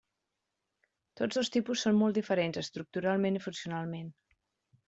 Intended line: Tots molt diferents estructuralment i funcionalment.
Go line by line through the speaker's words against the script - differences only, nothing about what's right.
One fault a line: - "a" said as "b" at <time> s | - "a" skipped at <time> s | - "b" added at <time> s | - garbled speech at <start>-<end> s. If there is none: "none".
- "dos tipus són" added at 1.4 s